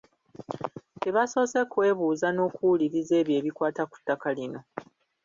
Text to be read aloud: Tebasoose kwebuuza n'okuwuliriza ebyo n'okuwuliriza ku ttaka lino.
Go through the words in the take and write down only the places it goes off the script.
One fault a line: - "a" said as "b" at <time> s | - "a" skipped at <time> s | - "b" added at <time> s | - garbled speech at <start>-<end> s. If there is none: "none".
- "n'okuwuliriza" said as "ebikwata" at 3.4 s